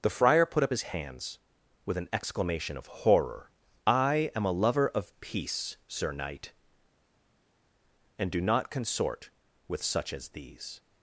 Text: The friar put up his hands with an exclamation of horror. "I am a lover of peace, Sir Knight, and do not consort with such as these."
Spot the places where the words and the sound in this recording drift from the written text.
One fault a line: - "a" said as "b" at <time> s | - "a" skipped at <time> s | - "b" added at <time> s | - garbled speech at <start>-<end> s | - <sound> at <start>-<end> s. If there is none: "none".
none